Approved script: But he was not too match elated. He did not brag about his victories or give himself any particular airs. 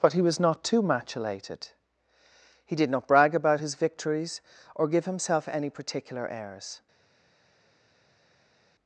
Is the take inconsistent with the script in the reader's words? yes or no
no